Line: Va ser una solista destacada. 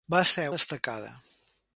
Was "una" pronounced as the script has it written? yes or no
no